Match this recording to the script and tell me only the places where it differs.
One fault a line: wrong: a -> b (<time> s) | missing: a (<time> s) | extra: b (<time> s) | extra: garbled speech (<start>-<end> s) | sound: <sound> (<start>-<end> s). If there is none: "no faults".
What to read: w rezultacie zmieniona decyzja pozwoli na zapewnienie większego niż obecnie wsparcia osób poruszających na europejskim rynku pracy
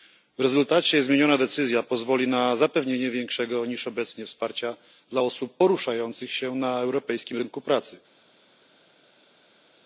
extra: dla (5.1 s)
extra: się (6.3 s)